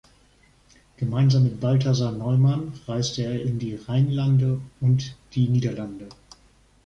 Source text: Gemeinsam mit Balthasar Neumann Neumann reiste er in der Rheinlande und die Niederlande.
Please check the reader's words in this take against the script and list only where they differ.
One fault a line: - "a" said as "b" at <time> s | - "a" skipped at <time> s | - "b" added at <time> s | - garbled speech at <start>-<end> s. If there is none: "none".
- "Neumann" skipped at 2.7 s
- "der" said as "die" at 3.6 s